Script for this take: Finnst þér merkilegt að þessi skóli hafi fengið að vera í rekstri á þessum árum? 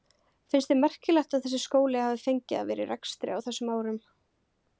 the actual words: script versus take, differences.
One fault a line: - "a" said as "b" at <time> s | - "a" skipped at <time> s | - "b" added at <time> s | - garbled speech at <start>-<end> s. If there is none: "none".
none